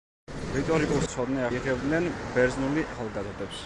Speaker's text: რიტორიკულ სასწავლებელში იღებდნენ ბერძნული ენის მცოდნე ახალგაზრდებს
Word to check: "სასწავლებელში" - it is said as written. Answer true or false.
false